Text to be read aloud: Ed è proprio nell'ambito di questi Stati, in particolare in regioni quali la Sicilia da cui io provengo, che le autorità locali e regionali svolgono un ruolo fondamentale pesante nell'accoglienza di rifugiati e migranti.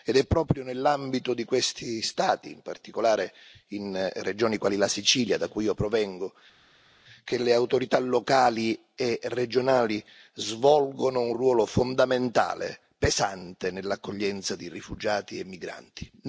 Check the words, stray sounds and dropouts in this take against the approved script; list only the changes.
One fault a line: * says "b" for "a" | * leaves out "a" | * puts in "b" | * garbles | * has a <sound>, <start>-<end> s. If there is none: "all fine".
all fine